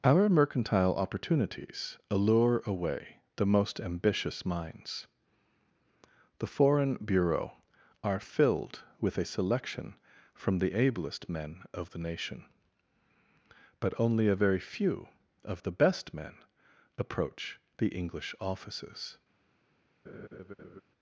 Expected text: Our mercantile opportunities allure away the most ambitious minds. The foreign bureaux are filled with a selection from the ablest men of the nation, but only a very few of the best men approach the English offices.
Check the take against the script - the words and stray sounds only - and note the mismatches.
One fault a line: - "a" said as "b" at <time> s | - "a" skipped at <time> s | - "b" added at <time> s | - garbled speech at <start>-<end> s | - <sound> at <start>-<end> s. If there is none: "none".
- laugh at 20.0-20.8 s